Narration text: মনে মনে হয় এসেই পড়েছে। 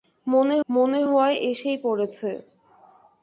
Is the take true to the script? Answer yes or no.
yes